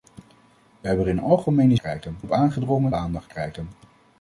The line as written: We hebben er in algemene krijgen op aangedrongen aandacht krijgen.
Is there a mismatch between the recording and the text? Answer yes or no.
no